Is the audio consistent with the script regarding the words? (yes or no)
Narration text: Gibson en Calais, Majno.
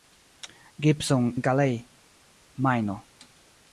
yes